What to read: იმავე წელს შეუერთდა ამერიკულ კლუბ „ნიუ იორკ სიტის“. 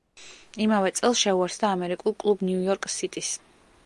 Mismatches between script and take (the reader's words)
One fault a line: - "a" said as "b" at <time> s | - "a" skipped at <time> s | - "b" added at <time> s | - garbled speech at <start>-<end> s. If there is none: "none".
none